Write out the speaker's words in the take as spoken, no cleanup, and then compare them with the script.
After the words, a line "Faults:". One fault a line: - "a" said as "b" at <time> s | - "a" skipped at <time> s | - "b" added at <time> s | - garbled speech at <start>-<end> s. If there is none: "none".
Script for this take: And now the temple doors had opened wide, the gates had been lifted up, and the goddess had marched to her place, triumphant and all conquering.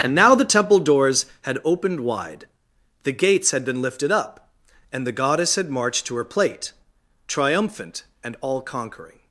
And now the temple doors had opened wide, the gates had been lifted up, and the goddess had marched to her plate, triumphant and all conquering.
Faults:
- "place" said as "plate" at 6.2 s